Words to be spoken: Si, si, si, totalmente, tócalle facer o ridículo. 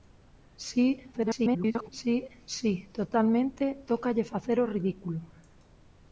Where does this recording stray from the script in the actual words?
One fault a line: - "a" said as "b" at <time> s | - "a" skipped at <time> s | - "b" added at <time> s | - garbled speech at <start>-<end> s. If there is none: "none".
- garbled speech at 1.1-1.9 s